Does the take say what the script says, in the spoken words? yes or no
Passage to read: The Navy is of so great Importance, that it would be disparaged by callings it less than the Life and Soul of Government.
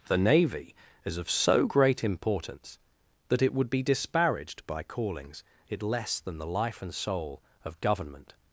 yes